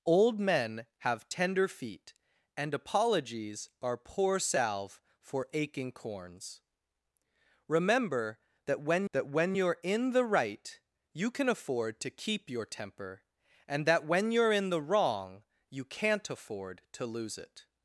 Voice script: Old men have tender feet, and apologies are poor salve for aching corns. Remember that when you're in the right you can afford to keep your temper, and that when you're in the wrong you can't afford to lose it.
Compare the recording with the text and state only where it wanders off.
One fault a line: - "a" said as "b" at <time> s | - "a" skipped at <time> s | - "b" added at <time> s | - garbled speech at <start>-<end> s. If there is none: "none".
- "that when" added at 9.1 s